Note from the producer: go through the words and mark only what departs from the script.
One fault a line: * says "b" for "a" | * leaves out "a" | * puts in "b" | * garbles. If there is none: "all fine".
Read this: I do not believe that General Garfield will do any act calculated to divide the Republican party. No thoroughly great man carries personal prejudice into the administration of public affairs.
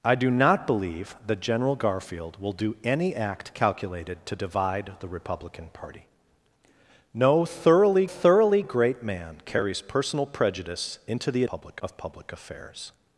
* puts in "thoroughly"
* says "public" for "administration"